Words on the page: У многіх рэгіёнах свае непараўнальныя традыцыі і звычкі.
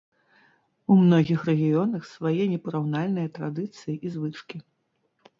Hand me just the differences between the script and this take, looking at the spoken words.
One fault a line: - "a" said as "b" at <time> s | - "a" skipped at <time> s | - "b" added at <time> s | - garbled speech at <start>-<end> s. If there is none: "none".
none